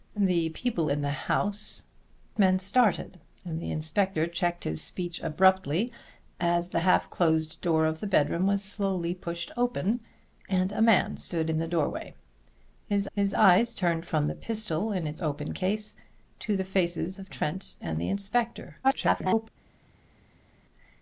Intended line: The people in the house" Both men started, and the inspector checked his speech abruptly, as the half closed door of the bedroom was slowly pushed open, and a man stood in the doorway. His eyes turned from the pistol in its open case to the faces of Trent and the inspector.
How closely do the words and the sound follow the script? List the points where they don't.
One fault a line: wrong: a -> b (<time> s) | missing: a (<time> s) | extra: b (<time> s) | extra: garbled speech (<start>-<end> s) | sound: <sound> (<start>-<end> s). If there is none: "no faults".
missing: Both (1.8 s)
extra: his (13.1 s)
extra: garbled speech (18.8-19.5 s)